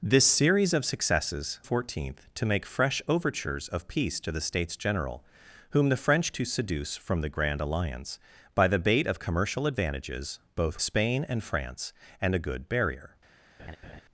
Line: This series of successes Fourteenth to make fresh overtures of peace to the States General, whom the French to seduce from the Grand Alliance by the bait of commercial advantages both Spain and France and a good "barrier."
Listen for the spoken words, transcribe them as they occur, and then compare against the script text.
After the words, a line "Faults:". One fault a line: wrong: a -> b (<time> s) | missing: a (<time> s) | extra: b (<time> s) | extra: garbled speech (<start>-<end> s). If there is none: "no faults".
This series of successes Fourteenth to make fresh overtures of peace to the States General, whom the French to seduce from the Grand Alliance by the bait of commercial advantages both Spain and France and a good "barrier."
Faults:
no faults